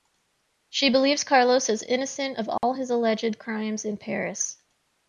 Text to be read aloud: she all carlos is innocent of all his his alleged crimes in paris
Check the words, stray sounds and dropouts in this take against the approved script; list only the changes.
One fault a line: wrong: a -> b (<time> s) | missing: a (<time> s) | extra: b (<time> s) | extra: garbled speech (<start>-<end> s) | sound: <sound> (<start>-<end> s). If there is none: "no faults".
wrong: all -> believes (0.9 s)
sound: dropout (2.6-2.6 s)
missing: his (2.9 s)